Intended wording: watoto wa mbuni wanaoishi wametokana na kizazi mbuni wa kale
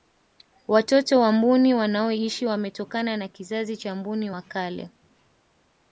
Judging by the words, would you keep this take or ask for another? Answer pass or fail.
fail